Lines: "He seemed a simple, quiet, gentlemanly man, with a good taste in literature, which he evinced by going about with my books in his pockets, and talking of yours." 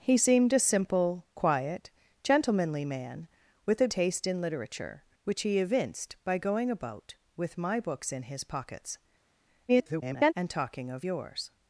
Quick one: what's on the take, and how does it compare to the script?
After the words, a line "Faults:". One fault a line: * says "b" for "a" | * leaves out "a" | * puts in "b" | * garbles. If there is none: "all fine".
"He seemed a simple, quiet, gentlemanly man, with a taste in literature, which he evinced by going about with my books in his pockets, [garbled] and talking of yours."
Faults:
* leaves out "good"
* garbles